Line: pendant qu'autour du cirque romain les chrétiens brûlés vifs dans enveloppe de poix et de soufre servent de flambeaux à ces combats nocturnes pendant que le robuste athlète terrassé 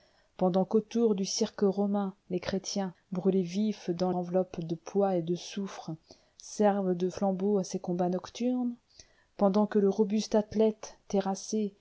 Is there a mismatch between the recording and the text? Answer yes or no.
no